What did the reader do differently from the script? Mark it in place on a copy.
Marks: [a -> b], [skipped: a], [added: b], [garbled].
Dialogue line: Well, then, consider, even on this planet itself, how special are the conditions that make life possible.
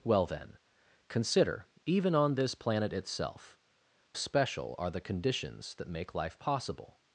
Well, then, consider, even on this planet itself, [skipped: how] special are the conditions that make life possible.